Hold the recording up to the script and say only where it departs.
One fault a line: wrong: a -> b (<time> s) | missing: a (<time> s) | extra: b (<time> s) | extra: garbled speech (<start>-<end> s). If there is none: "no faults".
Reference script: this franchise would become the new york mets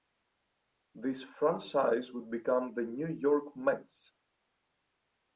no faults